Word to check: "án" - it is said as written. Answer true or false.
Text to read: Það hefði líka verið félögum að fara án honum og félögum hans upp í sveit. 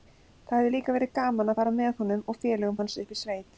false